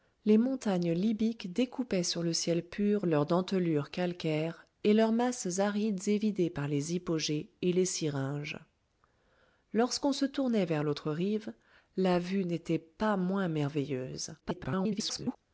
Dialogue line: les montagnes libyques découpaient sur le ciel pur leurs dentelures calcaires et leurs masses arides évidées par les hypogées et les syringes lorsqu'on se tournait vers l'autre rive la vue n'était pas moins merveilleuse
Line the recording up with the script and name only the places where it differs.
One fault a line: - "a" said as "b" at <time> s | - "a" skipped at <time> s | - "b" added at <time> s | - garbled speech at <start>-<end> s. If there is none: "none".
- garbled speech at 14.4-15.4 s